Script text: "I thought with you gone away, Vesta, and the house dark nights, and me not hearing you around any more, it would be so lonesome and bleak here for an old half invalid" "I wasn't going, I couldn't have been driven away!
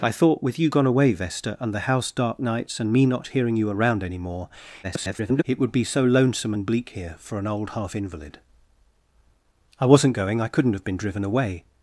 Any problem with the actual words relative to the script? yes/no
yes